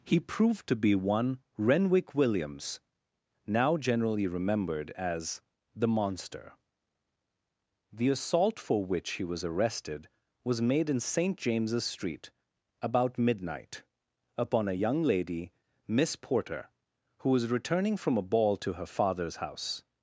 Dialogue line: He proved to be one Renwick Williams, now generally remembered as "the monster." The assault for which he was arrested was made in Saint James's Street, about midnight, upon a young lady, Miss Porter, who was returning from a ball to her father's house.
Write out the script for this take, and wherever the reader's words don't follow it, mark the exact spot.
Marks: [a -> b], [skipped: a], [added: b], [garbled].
He proved to be one Renwick Williams, now generally remembered as "the monster." The assault for which he was arrested was made in Saint James's Street, about midnight, upon a young lady, Miss Porter, who was returning from a ball to her father's house.